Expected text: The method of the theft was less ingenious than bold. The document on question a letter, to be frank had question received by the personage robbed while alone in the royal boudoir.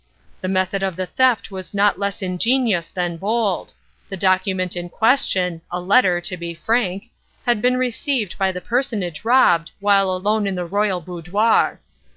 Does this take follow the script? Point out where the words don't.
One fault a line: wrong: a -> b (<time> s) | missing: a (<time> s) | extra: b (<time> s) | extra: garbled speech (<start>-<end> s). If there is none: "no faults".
extra: not (1.8 s)
wrong: on -> in (4.8 s)
wrong: question -> been (7.6 s)